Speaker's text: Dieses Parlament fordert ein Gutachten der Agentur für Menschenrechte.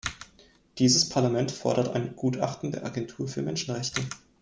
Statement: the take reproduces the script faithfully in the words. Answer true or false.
true